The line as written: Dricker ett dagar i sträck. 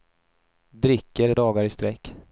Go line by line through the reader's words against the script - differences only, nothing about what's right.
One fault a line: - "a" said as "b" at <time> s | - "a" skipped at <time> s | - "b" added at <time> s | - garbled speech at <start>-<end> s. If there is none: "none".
none